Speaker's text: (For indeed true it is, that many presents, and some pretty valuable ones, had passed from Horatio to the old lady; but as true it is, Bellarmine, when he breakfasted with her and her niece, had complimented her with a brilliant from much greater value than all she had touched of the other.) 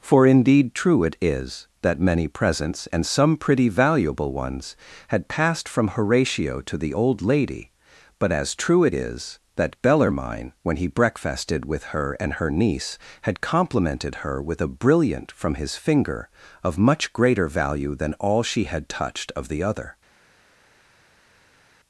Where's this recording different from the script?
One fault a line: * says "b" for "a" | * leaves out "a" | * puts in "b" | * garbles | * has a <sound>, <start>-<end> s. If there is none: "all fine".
* puts in "that"
* puts in "his finger of"